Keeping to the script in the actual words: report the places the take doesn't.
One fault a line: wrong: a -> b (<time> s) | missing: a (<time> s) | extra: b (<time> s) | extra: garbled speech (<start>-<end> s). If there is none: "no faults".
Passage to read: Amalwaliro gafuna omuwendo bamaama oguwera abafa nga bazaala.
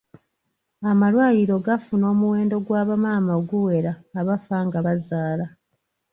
extra: gwa (2.6 s)